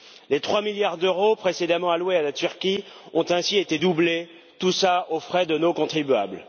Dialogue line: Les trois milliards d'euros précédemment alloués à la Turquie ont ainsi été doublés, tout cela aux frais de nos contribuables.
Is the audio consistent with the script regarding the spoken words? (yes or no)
yes